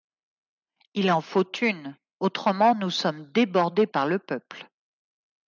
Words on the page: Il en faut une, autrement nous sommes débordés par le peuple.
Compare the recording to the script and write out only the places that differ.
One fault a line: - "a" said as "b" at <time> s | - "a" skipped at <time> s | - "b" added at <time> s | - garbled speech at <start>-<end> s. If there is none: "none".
none